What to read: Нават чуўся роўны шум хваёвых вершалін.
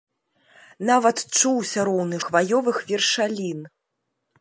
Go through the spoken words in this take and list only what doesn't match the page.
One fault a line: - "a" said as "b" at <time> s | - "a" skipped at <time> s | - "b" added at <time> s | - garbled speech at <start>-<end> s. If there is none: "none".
- "шум" skipped at 2.2 s